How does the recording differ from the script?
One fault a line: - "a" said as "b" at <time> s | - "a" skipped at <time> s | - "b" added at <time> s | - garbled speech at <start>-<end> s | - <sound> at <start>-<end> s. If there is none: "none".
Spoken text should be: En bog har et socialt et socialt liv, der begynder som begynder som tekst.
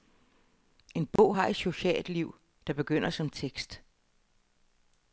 - dropout at 1.2-1.2 s
- "et socialt" skipped at 2.1 s
- "begynder som" skipped at 3.3 s